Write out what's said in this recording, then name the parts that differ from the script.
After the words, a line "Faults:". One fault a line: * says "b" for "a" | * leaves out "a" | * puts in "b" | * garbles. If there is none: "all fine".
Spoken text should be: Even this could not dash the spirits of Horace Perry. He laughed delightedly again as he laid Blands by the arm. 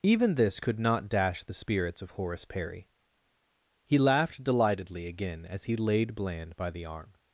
Even this could not dash the spirits of Horace Perry. He laughed delightedly again as he laid Bland by the arm.
Faults:
* says "Bland" for "Blands"